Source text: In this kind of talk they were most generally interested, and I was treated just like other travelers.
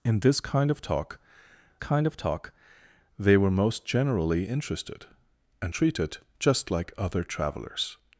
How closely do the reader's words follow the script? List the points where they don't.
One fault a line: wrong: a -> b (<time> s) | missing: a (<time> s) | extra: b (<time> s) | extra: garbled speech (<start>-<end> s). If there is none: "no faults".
extra: kind of talk (1.8 s)
missing: I was (5.7 s)